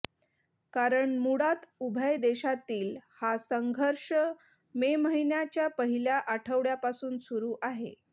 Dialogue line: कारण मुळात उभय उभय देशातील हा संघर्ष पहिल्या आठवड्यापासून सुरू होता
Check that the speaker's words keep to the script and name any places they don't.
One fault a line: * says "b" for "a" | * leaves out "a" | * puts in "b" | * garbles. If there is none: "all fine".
* leaves out "उभय"
* puts in "मे महिन्याच्या"
* says "आहे" for "होता"